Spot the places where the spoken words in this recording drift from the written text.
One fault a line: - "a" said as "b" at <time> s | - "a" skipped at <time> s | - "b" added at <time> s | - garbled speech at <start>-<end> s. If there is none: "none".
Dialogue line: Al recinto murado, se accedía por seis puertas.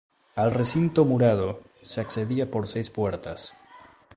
none